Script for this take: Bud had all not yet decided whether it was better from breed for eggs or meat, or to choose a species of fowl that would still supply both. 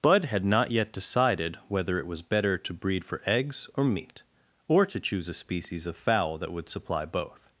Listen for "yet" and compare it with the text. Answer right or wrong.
right